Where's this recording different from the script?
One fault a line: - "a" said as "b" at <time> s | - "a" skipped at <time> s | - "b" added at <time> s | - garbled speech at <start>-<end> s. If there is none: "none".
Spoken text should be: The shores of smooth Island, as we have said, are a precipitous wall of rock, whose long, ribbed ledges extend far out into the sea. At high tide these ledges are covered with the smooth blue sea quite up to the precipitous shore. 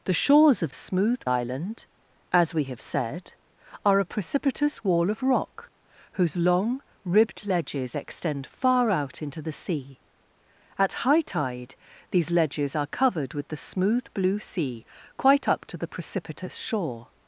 none